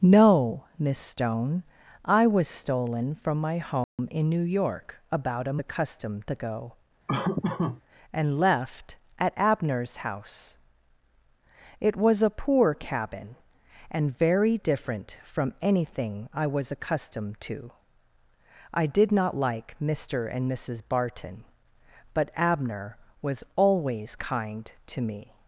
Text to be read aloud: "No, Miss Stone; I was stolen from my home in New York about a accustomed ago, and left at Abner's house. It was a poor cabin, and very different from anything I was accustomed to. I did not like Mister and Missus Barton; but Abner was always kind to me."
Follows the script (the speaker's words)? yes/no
yes